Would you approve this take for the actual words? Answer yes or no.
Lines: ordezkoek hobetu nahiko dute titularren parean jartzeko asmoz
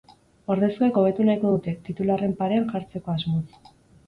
yes